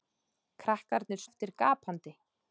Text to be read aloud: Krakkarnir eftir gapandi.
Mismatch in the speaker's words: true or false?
false